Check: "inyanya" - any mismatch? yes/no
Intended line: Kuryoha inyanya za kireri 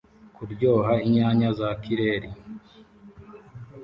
no